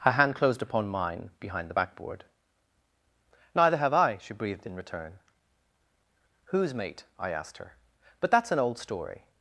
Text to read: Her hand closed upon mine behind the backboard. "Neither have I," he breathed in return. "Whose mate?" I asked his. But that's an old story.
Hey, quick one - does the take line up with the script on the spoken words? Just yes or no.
no